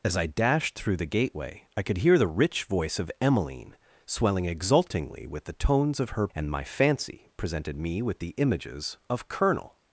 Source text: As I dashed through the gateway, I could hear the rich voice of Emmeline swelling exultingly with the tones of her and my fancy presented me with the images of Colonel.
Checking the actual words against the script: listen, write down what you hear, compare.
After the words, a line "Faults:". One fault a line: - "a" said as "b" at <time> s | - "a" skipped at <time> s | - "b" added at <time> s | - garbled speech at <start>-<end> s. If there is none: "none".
As I dashed through the gateway, I could hear the rich voice of Emmeline swelling exultingly with the tones of her and my fancy presented me with the images of Colonel.
Faults:
none